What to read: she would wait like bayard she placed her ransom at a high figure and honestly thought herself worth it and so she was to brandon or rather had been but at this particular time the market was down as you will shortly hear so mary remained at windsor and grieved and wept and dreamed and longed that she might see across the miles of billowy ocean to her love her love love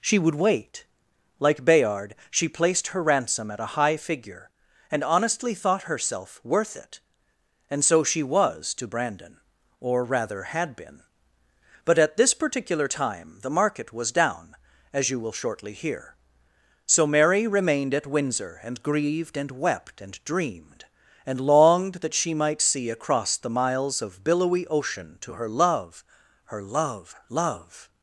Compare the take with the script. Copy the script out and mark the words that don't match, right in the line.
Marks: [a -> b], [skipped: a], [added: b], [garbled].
she would wait like bayard she placed her ransom at a high figure and honestly thought herself worth it and so she was to brandon or rather had been but at this particular time the market was down as you will shortly hear so mary remained at windsor and grieved and wept and dreamed and longed that she might see across the miles of billowy ocean to her love her love love